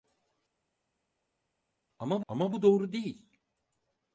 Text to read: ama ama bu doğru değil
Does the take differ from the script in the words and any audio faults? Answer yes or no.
no